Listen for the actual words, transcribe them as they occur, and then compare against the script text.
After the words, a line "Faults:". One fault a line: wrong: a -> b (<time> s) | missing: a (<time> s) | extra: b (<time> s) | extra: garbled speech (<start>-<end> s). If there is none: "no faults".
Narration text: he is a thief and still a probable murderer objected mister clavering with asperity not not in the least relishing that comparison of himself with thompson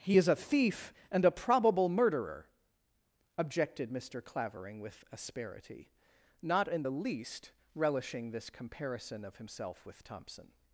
he is a thief and a probable murderer objected mister clavering with asperity not in the least relishing this comparison of himself with thompson
Faults:
missing: still (1.3 s)
missing: not (6.7 s)
wrong: that -> this (8.3 s)